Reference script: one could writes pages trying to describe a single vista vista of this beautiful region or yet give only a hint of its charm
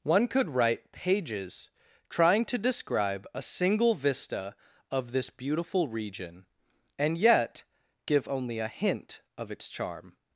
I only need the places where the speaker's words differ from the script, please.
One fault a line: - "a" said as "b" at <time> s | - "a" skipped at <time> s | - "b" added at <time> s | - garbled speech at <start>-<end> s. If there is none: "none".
- "writes" said as "write" at 0.5 s
- "vista" skipped at 4.5 s
- "or" said as "and" at 7.0 s